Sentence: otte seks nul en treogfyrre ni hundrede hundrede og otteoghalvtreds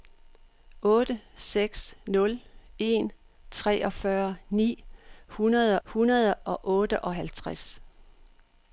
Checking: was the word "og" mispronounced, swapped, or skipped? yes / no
no